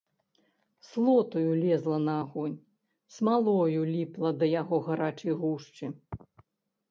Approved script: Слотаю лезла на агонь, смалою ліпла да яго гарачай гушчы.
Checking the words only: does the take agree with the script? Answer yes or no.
yes